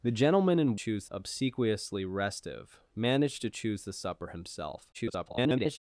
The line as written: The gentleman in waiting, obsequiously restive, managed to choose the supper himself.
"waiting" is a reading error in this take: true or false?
true